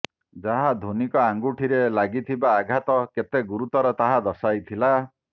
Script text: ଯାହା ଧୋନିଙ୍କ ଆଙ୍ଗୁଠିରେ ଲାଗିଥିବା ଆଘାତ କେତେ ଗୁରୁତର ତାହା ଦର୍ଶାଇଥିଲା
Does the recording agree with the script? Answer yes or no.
yes